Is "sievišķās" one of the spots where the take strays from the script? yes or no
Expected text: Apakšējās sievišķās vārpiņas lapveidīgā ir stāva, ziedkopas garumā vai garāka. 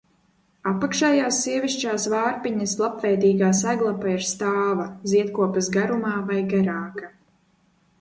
no